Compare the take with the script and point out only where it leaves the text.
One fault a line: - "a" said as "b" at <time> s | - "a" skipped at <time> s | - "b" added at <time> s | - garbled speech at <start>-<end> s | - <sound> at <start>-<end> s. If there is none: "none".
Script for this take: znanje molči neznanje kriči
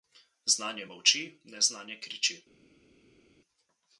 none